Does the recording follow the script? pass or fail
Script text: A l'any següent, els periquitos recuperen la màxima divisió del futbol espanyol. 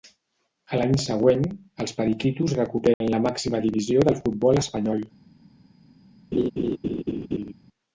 pass